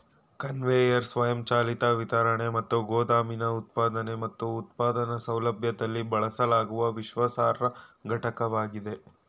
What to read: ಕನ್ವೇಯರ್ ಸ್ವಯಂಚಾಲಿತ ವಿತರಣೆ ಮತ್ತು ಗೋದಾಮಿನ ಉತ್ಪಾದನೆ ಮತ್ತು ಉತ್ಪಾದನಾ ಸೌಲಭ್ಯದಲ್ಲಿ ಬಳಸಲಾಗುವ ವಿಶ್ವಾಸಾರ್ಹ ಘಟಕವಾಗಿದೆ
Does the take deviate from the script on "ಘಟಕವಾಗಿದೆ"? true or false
false